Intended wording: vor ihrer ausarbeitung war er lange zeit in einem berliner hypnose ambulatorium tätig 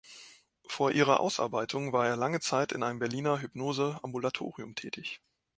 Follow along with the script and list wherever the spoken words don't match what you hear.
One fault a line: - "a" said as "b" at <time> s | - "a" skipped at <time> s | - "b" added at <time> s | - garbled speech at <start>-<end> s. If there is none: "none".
none